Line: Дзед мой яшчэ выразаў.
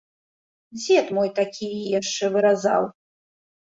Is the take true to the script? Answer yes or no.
no